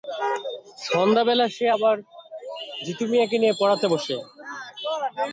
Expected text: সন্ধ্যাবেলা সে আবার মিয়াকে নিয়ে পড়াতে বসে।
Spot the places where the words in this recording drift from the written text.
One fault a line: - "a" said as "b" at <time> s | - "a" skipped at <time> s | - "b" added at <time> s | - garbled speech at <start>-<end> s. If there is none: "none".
- "জিতু" added at 2.8 s